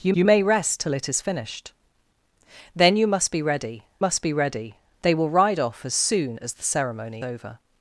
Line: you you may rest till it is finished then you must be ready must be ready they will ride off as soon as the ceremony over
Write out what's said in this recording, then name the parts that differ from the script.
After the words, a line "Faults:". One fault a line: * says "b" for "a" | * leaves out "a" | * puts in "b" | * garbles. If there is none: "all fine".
you you may rest till it is finished then you must be ready must be ready they will ride off as soon as the ceremony over
Faults:
all fine